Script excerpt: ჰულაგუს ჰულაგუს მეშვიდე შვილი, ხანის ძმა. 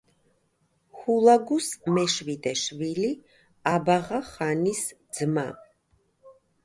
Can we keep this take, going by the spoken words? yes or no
no